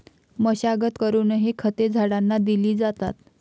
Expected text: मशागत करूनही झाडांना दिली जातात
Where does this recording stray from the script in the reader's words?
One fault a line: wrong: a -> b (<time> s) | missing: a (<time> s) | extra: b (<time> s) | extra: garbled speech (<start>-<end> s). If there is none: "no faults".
extra: खते (1.6 s)